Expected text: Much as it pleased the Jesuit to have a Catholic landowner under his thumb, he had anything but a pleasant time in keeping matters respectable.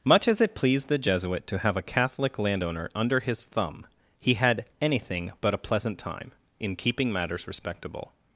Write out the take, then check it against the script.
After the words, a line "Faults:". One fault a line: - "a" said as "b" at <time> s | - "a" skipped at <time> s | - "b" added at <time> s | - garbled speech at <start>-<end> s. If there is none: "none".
Much as it pleased the Jesuit to have a Catholic landowner under his thumb, he had anything but a pleasant time in keeping matters respectable.
Faults:
none